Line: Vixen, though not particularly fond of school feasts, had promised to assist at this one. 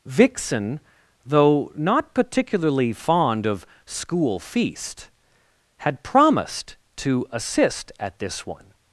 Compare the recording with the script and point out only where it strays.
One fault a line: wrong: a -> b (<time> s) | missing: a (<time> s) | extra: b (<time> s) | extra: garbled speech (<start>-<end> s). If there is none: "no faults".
wrong: feasts -> feast (4.4 s)